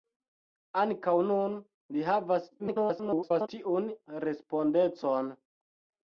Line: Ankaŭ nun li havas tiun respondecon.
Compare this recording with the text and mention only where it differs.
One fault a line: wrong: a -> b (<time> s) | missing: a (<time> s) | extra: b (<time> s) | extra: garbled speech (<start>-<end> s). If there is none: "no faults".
extra: garbled speech (2.6-3.5 s)